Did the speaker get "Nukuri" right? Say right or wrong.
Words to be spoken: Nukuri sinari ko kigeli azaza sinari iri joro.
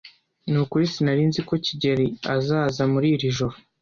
right